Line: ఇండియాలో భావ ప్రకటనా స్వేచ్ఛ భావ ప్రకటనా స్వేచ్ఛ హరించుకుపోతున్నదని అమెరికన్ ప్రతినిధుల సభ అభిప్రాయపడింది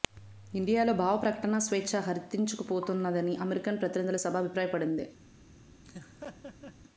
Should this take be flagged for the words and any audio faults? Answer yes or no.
yes